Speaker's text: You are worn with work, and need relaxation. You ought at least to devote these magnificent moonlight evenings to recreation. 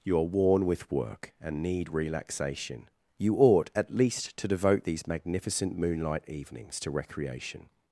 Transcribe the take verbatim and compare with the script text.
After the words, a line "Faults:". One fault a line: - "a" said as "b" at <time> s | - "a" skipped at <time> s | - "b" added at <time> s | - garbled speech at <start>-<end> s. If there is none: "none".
You are worn with work, and need relaxation. You ought at least to devote these magnificent moonlight evenings to recreation.
Faults:
none